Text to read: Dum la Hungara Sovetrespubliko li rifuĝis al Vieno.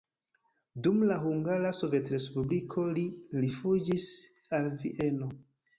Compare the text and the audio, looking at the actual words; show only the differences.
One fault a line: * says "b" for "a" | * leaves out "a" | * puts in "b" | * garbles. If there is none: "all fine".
all fine